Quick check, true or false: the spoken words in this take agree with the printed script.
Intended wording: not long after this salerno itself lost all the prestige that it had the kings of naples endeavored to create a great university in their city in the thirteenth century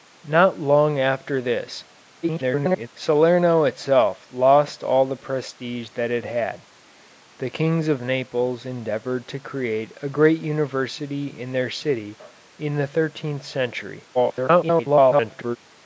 false